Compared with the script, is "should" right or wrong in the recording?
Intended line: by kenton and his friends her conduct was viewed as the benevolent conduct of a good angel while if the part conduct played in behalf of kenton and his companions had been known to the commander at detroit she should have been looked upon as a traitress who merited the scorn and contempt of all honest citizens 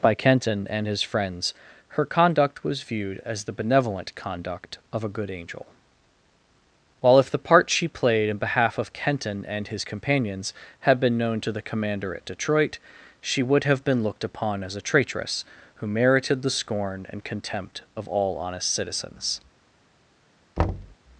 wrong